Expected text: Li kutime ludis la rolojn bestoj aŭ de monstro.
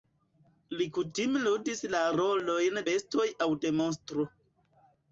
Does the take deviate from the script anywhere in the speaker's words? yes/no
no